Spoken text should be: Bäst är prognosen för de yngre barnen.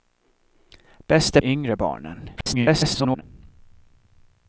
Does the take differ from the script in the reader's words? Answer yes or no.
yes